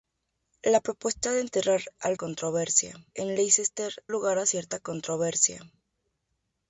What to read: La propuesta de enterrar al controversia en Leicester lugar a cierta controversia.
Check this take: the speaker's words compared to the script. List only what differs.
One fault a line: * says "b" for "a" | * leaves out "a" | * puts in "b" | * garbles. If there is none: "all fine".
all fine